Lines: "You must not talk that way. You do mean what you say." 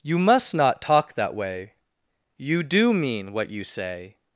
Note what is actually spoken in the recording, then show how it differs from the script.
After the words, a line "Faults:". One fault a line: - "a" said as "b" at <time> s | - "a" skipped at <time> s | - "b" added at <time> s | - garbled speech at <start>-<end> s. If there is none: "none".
"You must not talk that way. You do mean what you say."
Faults:
none